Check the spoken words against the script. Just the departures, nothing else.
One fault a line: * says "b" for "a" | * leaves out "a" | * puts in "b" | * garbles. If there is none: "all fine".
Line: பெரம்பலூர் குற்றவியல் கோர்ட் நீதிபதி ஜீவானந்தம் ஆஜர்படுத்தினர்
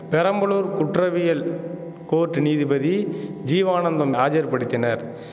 all fine